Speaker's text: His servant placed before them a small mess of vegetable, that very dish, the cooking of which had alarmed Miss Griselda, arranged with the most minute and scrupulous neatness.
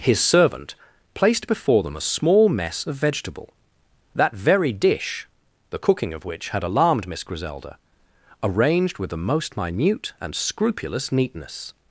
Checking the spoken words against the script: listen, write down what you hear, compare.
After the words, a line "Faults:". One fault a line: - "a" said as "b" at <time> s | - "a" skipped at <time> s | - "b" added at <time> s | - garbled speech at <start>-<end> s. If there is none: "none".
His servant placed before them a small mess of vegetable, that very dish, the cooking of which had alarmed Miss Griselda, arranged with the most minute and scrupulous neatness.
Faults:
none